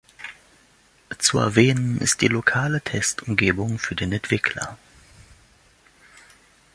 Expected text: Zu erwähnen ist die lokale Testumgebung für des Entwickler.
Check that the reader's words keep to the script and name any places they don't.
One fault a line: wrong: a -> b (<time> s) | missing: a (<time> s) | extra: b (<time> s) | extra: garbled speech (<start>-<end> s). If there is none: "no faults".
wrong: des -> den (4.0 s)